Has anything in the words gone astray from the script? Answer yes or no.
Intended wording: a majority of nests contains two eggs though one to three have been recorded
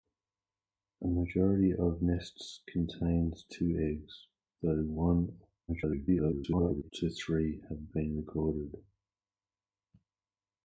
yes